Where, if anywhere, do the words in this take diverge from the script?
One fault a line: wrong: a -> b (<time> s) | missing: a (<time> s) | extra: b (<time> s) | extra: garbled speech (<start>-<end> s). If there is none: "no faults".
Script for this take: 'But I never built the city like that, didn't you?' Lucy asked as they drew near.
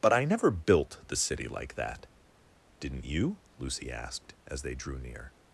no faults